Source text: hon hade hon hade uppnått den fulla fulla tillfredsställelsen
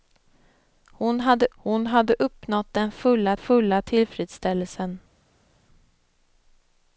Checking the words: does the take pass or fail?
pass